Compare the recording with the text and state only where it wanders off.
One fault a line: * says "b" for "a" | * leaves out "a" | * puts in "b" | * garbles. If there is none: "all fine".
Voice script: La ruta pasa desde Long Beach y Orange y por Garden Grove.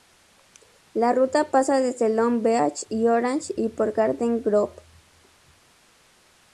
all fine